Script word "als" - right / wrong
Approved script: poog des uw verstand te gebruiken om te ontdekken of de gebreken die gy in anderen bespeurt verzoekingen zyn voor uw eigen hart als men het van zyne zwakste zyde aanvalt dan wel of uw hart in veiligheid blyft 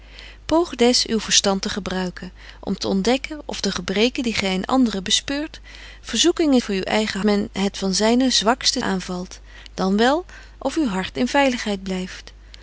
wrong